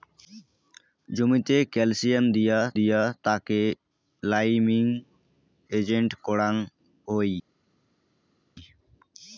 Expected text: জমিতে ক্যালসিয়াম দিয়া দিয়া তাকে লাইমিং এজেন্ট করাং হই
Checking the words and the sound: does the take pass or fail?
pass